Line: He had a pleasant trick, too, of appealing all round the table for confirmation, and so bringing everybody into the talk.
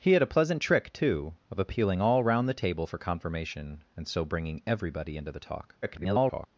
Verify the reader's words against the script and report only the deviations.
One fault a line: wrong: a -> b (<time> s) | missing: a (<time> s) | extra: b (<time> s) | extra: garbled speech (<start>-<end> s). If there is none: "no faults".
extra: garbled speech (5.8-6.5 s)